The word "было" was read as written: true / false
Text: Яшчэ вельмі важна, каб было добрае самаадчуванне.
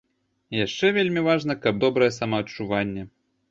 false